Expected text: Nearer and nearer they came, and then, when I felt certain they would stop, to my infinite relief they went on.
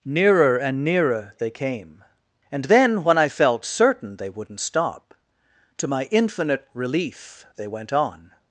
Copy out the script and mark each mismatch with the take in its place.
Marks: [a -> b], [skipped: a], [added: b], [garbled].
Nearer and nearer they came, and then, when I felt certain they [would -> wouldn't] stop, to my infinite relief they went on.